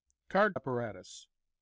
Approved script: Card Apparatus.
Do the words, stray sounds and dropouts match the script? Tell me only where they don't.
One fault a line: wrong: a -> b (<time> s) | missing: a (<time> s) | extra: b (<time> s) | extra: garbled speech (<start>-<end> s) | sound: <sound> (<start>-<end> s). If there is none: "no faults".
no faults